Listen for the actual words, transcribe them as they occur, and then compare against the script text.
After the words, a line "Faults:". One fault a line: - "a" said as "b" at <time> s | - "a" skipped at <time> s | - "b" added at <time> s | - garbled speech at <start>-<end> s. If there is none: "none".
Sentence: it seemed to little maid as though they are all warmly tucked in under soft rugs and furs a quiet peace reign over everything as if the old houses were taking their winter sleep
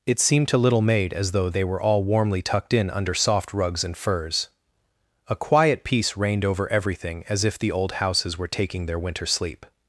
it seemed to little maid as though they were all warmly tucked in under soft rugs and furs a quiet peace reigned over everything as if the old houses were taking their winter sleep
Faults:
- "are" said as "were" at 1.6 s
- "reign" said as "reigned" at 6.2 s